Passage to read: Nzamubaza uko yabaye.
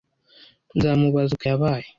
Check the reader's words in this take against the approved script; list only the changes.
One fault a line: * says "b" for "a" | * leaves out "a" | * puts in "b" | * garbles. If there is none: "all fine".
all fine